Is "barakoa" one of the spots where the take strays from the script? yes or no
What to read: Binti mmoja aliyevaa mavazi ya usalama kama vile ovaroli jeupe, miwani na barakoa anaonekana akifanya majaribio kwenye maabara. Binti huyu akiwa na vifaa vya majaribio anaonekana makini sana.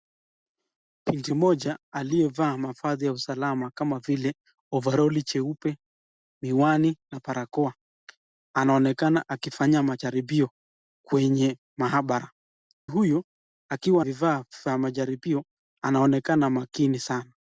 no